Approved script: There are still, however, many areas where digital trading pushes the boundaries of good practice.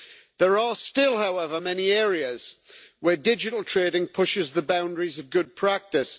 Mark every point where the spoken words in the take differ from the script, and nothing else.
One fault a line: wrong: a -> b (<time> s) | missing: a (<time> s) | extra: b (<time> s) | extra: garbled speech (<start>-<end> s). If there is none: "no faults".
no faults